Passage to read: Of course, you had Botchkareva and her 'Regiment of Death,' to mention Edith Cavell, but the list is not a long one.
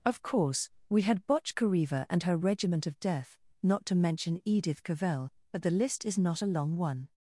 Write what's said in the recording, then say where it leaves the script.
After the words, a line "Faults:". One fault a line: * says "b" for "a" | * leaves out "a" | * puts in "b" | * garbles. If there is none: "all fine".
Of course, we had Botchkareva and her 'Regiment of Death,' not to mention Edith Cavell, but the list is not a long one.
Faults:
* says "we" for "you"
* puts in "not"